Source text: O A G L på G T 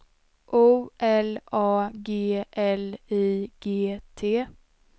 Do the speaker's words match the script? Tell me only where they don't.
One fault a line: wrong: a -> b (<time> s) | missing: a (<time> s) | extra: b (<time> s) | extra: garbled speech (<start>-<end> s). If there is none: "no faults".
extra: L (1.0 s)
wrong: på -> I (3.1 s)